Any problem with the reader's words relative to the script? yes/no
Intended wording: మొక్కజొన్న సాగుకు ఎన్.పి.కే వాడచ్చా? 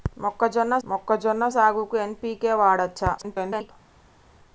yes